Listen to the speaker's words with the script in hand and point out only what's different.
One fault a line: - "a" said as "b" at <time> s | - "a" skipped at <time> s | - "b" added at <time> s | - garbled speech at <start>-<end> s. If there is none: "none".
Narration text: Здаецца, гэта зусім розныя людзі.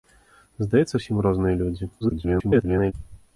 - "гэта" skipped at 0.9 s
- garbled speech at 2.0-2.9 s